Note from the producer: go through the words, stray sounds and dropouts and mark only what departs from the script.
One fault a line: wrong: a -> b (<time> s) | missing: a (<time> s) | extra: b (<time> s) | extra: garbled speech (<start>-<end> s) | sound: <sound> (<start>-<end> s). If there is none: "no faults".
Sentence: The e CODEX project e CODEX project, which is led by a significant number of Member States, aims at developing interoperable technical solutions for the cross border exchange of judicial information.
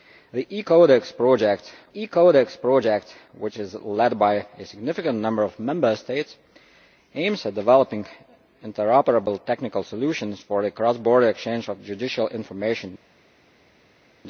no faults